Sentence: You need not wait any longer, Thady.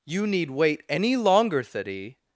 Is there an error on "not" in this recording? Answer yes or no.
yes